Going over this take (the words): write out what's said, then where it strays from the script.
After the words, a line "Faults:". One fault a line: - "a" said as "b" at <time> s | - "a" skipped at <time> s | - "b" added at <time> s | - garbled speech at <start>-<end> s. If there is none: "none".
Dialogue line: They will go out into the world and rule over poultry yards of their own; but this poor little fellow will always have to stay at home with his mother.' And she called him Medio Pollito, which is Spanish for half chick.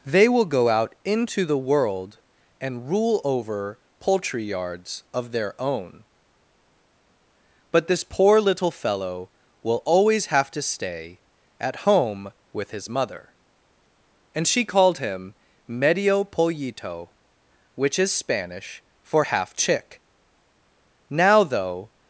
They will go out into the world and rule over poultry yards of their own; but this poor little fellow will always have to stay at home with his mother.' And she called him Medio Pollito, which is Spanish for half chick. Now though
Faults:
- "Now though" added at 21.1 s